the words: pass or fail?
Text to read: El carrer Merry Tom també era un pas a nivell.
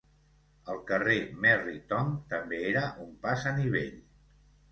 pass